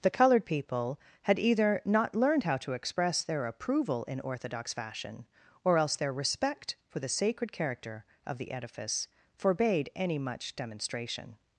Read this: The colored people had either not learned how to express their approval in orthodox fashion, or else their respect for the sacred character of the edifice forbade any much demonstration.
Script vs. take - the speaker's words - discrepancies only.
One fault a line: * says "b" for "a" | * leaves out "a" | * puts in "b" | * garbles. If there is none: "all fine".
all fine